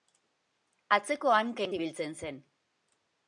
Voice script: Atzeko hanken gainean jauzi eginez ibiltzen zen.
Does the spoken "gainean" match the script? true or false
false